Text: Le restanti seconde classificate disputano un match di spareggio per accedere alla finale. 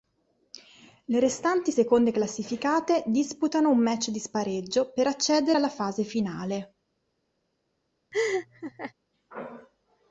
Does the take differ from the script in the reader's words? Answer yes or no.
yes